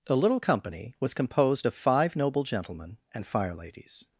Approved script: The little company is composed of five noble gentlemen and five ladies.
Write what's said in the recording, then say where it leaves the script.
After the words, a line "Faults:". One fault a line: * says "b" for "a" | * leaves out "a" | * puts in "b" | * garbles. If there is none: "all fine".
The little company was composed of five noble gentlemen and fire ladies.
Faults:
* says "was" for "is"
* says "fire" for "five"